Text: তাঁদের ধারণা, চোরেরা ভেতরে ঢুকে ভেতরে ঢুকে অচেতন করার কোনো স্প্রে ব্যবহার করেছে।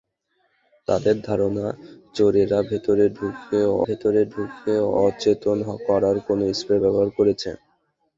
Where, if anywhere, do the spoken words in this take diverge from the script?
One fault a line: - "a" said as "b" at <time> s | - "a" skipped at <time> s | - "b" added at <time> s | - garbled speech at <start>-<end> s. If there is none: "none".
none